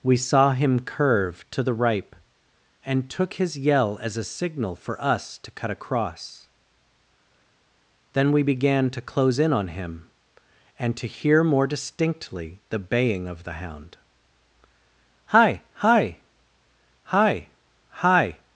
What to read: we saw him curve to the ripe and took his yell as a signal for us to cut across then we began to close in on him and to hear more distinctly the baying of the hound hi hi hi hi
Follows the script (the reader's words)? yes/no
yes